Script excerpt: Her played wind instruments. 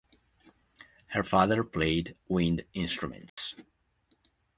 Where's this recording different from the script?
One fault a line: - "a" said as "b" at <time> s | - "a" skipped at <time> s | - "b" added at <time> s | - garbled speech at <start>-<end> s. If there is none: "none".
- "father" added at 1.2 s